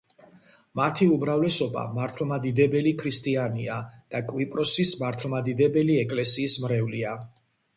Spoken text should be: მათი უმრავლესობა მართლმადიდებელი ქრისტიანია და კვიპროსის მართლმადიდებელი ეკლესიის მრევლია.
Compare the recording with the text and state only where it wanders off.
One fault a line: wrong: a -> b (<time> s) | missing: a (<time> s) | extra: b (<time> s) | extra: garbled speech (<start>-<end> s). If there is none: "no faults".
no faults